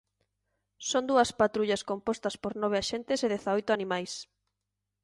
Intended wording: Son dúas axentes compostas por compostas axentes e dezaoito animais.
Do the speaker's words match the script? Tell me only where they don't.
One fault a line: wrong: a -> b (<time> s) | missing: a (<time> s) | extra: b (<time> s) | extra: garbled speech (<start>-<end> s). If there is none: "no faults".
wrong: axentes -> patrullas (1.4 s)
wrong: compostas -> nove (2.6 s)